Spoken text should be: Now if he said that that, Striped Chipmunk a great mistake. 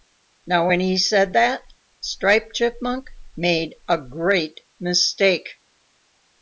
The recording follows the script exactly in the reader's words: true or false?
false